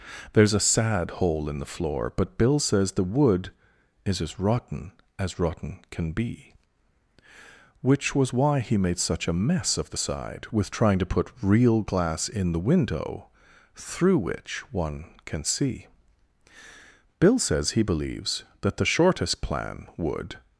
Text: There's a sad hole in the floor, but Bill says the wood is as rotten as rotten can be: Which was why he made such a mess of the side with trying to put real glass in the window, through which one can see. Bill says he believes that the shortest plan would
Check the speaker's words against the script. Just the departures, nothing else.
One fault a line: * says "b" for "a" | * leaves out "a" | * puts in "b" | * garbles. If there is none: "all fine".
all fine